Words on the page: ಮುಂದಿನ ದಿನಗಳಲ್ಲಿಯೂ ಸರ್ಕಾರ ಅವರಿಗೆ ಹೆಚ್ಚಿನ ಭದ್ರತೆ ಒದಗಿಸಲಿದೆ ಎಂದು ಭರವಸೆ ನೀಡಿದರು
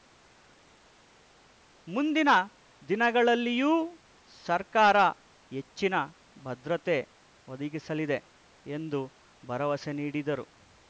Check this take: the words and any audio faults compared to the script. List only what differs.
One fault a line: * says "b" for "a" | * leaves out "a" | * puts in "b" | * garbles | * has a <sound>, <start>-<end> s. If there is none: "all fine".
* leaves out "ಅವರಿಗೆ"